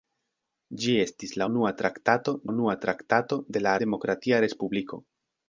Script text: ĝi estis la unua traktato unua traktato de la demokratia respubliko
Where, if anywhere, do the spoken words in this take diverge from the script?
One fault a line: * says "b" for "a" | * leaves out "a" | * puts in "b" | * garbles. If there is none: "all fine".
all fine